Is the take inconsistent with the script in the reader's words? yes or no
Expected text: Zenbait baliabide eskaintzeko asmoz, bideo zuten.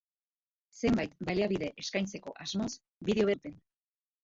no